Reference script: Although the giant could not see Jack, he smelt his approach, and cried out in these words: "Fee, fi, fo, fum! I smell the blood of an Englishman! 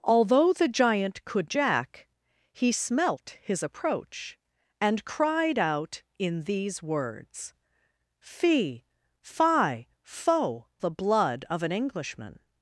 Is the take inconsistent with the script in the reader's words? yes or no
yes